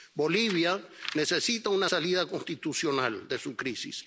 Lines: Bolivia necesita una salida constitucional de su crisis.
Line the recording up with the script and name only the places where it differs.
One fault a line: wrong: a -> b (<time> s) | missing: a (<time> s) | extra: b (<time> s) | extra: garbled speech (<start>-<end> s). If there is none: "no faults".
no faults